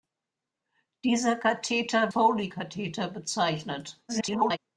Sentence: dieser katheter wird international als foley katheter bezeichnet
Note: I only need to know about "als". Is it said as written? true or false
false